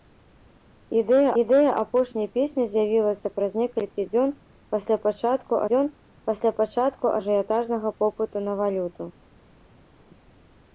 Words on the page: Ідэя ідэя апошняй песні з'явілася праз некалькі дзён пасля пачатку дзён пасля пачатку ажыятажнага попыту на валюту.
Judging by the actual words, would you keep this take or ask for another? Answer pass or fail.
pass